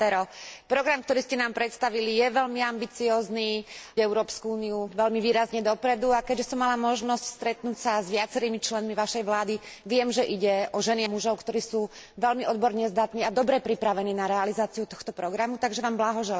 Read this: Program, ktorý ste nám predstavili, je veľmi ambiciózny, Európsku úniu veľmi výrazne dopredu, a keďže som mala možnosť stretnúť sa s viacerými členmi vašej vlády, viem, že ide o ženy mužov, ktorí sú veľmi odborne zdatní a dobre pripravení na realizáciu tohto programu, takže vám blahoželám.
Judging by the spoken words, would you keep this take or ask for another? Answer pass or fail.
pass